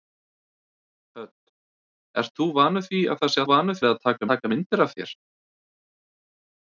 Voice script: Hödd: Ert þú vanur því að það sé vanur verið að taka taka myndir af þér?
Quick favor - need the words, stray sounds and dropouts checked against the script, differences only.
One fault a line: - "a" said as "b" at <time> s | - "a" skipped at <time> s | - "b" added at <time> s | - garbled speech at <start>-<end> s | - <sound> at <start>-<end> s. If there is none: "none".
none